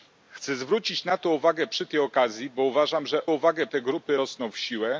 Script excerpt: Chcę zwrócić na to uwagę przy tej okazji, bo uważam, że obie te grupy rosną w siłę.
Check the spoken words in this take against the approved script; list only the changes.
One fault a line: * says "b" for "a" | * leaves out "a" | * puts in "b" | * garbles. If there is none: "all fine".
* says "uwagę" for "obie"